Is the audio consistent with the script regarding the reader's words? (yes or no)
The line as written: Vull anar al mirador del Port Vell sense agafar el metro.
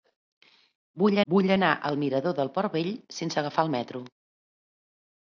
no